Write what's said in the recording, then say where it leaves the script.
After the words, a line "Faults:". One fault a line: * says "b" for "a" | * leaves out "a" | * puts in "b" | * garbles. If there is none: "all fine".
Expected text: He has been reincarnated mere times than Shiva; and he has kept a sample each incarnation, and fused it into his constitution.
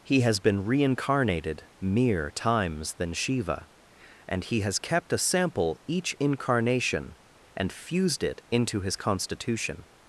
He has been reincarnated mere times than Shiva; and he has kept a sample each incarnation, and fused it into his constitution.
Faults:
all fine